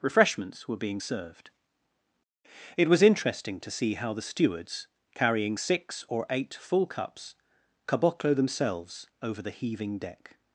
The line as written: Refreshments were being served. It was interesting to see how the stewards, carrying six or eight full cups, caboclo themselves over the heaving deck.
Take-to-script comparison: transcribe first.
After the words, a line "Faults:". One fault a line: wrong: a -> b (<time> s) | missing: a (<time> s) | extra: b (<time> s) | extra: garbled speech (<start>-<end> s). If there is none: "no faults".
Refreshments were being served. It was interesting to see how the stewards, carrying six or eight full cups, caboclo themselves over the heaving deck.
Faults:
no faults